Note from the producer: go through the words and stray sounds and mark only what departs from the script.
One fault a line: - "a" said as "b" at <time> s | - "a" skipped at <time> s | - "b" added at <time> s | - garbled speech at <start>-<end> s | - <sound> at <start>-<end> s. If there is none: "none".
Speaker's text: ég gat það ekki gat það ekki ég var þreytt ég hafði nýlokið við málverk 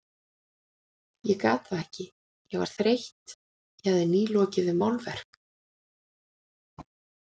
- "gat það ekki" skipped at 2.1 s